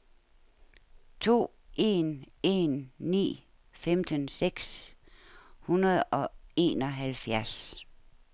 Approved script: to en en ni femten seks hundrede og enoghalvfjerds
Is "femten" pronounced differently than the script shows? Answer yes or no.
no